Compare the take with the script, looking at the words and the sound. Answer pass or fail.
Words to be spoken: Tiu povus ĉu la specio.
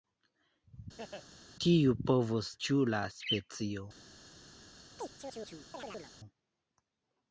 fail